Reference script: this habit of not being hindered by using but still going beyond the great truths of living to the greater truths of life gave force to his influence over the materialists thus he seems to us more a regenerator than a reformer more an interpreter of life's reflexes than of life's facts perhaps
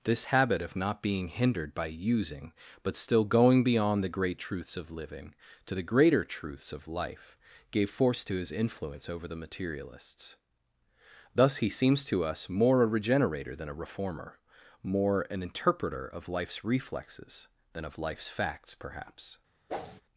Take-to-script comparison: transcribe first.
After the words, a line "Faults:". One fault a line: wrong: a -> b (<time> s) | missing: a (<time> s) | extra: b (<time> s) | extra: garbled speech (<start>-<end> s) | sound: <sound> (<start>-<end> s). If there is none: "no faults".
this habit of not being hindered by using but still going beyond the great truths of living to the greater truths of life gave force to his influence over the materialists thus he seems to us more a regenerator than a reformer more an interpreter of life's reflexes than of life's facts perhaps
Faults:
sound: whoosh (19.7-20.0 s)